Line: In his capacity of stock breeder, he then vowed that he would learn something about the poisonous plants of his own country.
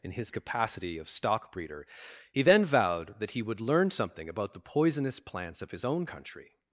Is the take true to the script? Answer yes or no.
yes